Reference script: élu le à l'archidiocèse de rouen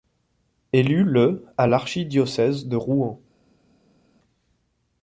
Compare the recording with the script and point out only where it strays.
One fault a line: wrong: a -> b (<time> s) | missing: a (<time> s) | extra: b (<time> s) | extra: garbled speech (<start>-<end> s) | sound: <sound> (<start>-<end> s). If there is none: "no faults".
no faults